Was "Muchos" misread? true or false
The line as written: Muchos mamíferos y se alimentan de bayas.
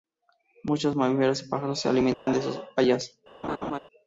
false